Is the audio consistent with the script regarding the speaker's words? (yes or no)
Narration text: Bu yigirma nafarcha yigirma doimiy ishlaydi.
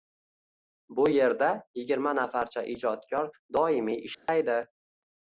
no